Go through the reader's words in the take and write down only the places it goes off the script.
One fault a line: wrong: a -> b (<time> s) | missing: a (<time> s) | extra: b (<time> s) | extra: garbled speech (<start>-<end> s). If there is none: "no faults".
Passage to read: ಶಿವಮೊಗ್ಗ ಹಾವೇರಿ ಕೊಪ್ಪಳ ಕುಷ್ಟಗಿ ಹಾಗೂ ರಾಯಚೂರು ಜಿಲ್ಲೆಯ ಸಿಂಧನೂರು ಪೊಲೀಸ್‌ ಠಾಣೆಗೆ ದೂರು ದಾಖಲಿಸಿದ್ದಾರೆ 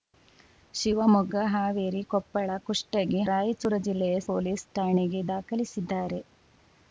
missing: ಹಾಗೂ (3.2 s)
missing: ಸಿಂಧನೂರು (4.2 s)
missing: ದೂರು (5.2 s)